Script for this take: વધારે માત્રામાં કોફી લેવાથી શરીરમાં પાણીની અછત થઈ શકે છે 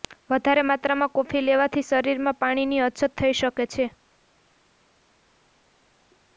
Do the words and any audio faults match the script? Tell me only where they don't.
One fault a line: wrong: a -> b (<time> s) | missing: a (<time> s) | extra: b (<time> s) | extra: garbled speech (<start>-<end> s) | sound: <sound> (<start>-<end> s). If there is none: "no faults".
no faults